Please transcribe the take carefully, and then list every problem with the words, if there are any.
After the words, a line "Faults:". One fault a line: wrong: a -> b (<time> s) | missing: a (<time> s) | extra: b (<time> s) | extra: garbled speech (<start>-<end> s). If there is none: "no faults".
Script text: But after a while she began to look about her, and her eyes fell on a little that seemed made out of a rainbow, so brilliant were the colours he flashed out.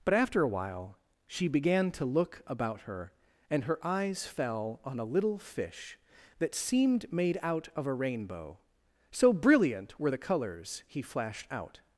But after a while she began to look about her, and her eyes fell on a little fish that seemed made out of a rainbow, so brilliant were the colours he flashed out.
Faults:
extra: fish (5.4 s)